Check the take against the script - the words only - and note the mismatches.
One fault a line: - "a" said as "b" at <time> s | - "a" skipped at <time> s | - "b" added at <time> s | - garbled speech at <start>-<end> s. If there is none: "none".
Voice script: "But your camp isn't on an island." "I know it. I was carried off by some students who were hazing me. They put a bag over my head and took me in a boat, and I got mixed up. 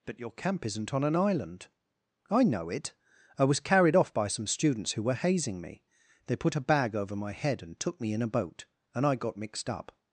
none